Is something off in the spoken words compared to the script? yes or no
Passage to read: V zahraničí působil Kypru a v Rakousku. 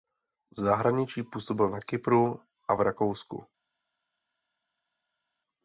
yes